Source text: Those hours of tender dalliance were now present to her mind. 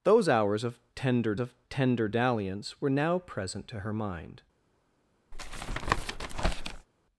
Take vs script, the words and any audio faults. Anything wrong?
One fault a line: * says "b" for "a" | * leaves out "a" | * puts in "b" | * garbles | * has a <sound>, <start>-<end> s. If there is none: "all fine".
* puts in "of tender"
* has a tap, 5.3-6.9 s